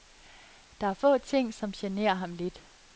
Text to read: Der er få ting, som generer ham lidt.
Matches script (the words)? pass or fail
pass